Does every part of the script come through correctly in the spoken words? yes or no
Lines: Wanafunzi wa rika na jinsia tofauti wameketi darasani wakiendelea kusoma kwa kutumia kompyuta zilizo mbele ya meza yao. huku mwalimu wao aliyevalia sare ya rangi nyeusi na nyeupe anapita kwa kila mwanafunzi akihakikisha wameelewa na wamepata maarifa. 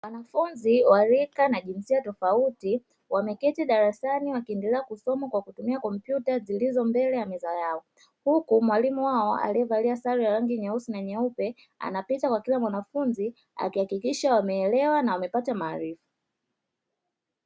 yes